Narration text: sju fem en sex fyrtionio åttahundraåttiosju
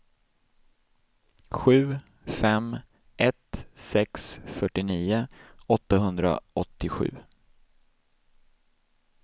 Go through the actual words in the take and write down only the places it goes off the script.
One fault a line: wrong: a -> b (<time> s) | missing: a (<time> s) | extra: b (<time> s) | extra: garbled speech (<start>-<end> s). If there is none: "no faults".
wrong: en -> ett (3.2 s)